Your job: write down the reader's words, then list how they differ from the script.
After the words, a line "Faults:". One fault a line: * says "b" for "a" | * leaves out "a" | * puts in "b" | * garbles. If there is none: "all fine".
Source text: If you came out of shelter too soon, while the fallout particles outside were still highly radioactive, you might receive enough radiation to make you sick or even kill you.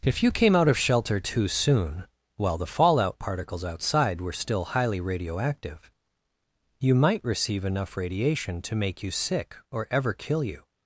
If you came out of shelter too soon, while the fallout particles outside were still highly radioactive, you might receive enough radiation to make you sick or ever kill you.
Faults:
* says "ever" for "even"